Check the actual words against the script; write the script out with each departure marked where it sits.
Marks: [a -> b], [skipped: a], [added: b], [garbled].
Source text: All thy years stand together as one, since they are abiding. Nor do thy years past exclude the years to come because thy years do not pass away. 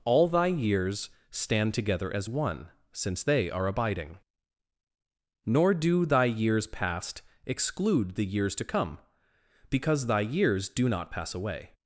All thy years stand together as one, since they are abiding. Nor do thy years past exclude the years to come because thy years do not pass away.